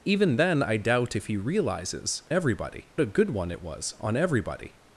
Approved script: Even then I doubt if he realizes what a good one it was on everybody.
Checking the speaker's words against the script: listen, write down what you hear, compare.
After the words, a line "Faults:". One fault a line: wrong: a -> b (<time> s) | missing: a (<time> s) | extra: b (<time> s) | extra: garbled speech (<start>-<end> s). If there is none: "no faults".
Even then I doubt if he realizes everybody a good one it was on everybody.
Faults:
wrong: what -> everybody (2.3 s)